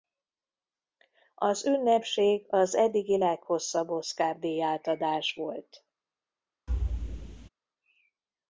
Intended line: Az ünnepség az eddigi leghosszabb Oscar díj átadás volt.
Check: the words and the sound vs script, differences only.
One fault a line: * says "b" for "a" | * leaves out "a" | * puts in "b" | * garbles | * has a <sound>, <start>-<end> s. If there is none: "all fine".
* has a thud, 6.7-7.5 s